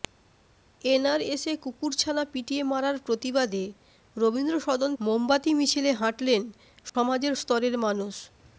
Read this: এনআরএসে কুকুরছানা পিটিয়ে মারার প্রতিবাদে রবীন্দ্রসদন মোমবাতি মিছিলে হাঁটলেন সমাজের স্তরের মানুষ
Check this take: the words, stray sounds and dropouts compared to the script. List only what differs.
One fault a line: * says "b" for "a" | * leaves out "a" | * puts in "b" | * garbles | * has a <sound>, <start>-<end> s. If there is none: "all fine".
* has a dropout, 6.9-6.9 s